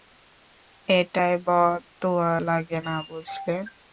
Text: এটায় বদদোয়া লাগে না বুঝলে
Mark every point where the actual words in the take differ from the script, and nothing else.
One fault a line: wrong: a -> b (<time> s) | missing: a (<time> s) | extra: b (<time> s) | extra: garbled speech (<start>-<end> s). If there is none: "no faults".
no faults